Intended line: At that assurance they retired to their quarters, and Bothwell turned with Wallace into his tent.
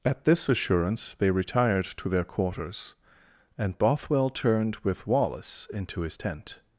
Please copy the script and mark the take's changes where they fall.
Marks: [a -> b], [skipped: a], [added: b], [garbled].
At [that -> this] assurance they retired to their quarters, and Bothwell turned with Wallace into his tent.